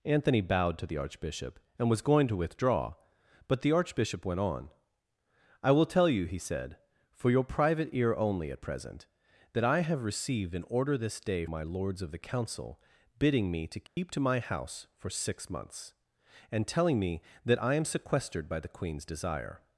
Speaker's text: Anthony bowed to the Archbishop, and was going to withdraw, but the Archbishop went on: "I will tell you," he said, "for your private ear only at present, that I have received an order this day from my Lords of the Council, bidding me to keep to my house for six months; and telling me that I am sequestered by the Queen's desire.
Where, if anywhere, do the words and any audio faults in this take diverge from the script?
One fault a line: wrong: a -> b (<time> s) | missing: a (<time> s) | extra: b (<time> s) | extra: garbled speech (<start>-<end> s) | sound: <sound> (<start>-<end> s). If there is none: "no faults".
missing: from (11.4 s)
sound: dropout (13.9-14.0 s)